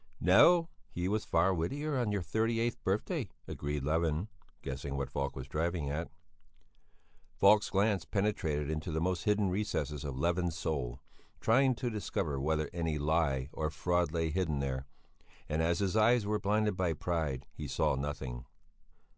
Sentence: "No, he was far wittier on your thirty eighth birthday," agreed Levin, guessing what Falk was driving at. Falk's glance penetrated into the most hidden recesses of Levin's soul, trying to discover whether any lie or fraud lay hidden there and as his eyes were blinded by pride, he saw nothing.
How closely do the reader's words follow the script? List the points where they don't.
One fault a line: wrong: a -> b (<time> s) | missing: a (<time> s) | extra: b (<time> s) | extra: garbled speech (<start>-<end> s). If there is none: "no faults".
no faults